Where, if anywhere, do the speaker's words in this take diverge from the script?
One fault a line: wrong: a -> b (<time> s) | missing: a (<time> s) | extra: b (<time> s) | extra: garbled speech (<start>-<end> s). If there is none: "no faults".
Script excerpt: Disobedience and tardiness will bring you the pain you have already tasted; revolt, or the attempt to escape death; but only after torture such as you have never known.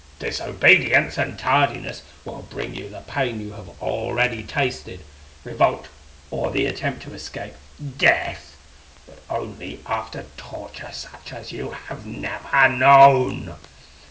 no faults